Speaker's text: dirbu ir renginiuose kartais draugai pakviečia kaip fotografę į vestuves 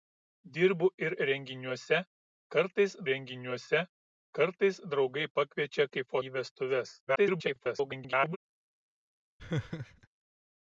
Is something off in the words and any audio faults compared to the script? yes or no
yes